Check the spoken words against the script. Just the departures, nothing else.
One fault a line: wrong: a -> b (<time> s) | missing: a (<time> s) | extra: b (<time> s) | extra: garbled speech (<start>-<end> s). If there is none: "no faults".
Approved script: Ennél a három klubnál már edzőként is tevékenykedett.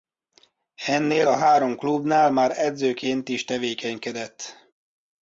no faults